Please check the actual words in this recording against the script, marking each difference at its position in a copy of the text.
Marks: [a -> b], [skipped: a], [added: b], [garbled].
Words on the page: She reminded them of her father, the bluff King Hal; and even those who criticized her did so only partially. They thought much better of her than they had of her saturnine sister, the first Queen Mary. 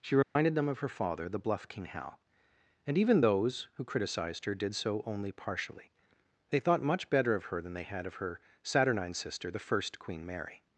She reminded them of her father, the bluff King Hal; and even those who criticized her did so only partially. They thought much better of her than they had of her saturnine sister, the first Queen Mary.